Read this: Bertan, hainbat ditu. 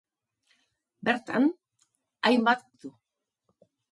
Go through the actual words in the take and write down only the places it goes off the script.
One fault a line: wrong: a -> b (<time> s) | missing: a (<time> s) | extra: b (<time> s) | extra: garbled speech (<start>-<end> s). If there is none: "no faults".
no faults